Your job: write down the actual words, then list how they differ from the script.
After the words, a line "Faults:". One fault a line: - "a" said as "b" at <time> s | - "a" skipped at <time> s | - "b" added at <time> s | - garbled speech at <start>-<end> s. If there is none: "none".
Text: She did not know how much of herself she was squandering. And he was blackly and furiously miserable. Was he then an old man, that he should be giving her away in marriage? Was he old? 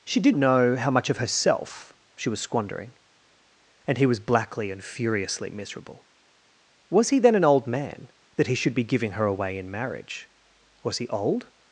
She did know how much of herself she was squandering. And he was blackly and furiously miserable. Was he then an old man, that he should be giving her away in marriage? Was he old?
Faults:
- "not" skipped at 0.3 s